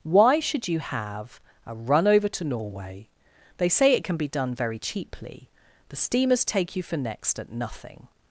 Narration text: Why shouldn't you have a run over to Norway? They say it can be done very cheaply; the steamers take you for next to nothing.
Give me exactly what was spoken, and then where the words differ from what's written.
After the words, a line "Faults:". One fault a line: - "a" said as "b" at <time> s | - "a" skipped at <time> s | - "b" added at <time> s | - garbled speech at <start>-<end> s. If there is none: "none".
Why should you have a run over to Norway? They say it can be done very cheaply; the steamers take you for next at nothing.
Faults:
- "shouldn't" said as "should" at 0.4 s
- "to" said as "at" at 7.4 s